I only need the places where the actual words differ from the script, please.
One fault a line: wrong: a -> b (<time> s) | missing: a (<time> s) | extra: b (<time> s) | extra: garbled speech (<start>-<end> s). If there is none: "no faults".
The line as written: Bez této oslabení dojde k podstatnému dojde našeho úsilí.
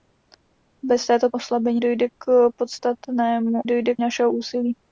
no faults